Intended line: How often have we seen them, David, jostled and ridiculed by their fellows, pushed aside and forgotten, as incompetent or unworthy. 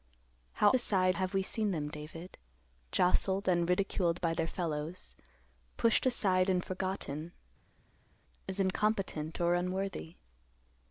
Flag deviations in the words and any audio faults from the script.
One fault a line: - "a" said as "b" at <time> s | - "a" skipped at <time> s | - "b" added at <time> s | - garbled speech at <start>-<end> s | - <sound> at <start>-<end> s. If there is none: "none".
- "often" said as "aside" at 0.7 s